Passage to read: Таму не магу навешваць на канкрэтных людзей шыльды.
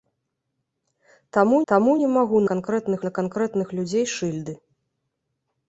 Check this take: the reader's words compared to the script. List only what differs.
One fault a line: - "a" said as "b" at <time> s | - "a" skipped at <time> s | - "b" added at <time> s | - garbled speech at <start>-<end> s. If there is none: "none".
- "таму" added at 1.7 s
- "навешваць" said as "канкрэтных" at 2.5 s